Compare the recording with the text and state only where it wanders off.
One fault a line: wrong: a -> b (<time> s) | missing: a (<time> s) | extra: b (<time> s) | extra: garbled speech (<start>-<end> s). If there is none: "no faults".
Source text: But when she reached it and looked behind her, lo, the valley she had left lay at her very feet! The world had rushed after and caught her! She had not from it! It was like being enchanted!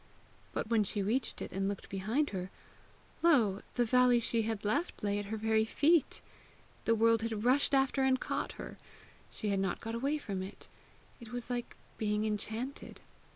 extra: got away (9.8 s)